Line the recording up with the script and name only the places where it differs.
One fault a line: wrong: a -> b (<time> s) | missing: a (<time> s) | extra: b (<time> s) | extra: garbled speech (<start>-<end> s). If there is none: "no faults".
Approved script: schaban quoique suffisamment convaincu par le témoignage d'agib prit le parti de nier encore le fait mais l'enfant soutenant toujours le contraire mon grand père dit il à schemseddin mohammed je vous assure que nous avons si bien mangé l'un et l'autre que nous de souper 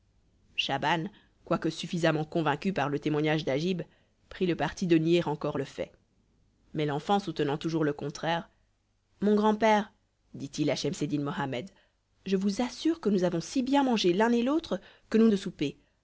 no faults